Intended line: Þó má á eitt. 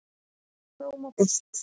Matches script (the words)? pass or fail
pass